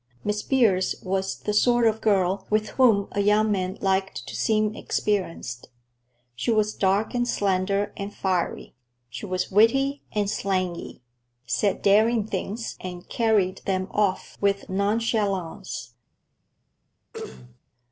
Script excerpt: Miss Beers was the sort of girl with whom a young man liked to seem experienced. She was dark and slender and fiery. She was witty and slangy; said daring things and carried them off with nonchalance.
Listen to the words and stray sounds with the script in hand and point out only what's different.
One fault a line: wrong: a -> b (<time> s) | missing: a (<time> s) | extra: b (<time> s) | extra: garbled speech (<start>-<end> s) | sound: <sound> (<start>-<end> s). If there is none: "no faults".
sound: throat clearing (17.1-17.6 s)